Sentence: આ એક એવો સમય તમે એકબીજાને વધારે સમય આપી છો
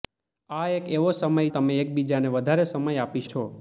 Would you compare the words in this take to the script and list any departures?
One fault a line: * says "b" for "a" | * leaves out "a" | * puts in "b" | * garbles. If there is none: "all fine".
all fine